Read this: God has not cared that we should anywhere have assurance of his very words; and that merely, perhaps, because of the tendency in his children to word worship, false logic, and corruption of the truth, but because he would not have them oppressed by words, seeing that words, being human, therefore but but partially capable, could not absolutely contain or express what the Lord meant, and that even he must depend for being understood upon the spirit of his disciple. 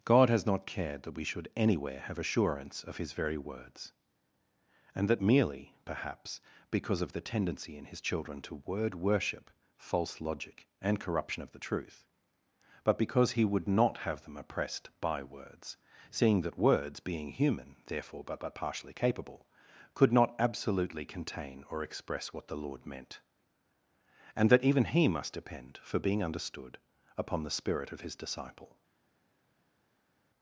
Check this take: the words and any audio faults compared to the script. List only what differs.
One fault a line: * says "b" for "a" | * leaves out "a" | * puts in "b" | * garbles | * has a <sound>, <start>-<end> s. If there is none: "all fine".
all fine